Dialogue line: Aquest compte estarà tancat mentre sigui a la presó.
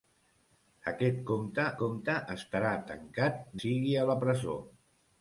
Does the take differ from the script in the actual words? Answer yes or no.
yes